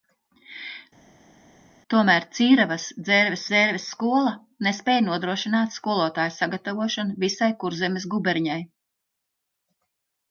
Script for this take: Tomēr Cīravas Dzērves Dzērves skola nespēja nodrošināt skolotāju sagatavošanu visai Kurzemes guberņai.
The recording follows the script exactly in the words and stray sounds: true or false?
true